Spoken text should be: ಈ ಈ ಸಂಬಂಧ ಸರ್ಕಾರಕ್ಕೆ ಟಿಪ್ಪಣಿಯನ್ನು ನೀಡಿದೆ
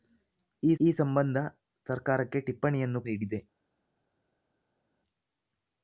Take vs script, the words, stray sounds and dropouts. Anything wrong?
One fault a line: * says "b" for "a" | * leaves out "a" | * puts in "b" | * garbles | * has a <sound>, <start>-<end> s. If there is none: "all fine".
all fine